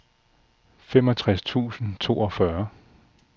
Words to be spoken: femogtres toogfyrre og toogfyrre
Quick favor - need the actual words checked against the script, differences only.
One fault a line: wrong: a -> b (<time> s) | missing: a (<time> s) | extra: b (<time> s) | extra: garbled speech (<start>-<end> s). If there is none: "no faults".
wrong: toogfyrre -> tusind (1.4 s)